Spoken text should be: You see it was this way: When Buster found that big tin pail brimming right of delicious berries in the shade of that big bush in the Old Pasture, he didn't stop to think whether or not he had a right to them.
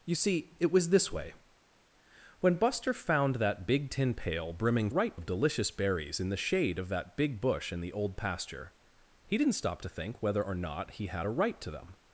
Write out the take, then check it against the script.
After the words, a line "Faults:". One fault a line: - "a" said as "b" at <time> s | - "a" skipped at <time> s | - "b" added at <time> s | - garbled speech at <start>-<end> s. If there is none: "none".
You see it was this way: When Buster found that big tin pail brimming right of delicious berries in the shade of that big bush in the Old Pasture, he didn't stop to think whether or not he had a right to them.
Faults:
none